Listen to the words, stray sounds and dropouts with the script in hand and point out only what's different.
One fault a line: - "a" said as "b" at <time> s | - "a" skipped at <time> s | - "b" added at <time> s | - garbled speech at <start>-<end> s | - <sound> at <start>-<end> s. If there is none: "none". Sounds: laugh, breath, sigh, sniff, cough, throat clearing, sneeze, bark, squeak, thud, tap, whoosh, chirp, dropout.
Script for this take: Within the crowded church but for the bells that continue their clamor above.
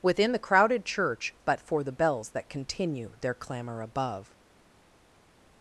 none